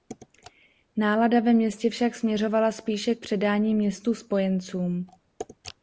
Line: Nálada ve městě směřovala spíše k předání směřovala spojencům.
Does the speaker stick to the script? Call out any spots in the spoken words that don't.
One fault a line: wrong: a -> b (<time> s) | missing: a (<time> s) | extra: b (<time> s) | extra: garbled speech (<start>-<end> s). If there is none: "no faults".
extra: však (1.9 s)
wrong: směřovala -> městu (3.7 s)